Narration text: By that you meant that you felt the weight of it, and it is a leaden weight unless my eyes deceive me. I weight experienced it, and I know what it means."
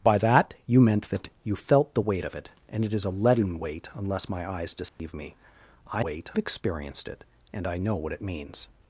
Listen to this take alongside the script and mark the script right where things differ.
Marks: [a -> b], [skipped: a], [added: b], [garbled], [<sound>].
By that you meant that you felt the weight of it, and it is a leaden weight unless my eyes deceive [dropout] me. I weight experienced it, and I know what it means."